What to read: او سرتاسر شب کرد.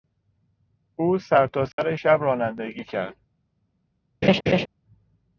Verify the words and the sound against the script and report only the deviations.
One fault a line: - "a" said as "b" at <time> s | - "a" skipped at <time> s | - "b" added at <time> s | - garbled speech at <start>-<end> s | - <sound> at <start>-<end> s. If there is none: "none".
- dropout at 1.7-1.8 s
- "رانندگی" added at 2.2 s
- laugh at 4.2-4.7 s